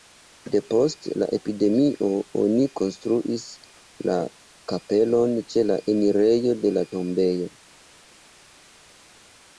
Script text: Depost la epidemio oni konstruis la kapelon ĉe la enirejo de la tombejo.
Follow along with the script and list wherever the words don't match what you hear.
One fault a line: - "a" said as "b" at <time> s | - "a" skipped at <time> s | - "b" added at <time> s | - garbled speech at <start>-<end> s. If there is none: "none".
none